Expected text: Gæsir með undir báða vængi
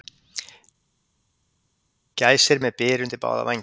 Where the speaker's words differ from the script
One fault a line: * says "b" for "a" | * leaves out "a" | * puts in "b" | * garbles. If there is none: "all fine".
* puts in "byr"